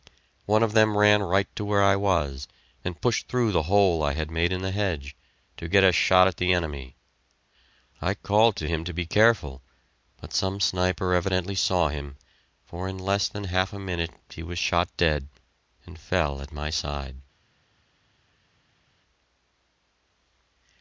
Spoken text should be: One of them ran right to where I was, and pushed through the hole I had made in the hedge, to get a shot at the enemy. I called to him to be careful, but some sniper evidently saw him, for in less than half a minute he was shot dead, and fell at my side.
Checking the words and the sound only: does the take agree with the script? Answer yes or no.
yes